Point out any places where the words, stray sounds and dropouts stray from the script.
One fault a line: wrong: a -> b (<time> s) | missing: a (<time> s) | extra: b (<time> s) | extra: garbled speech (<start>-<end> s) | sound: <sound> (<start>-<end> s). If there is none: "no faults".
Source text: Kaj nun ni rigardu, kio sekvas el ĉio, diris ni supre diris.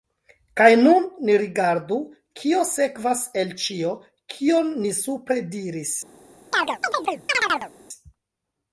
wrong: diris -> kion (4.3 s)
sound: chirp (6.5-7.7 s)